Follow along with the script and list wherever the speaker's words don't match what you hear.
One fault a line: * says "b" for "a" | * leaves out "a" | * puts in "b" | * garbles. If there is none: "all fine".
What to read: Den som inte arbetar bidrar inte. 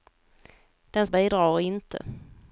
* leaves out "som inte arbetar"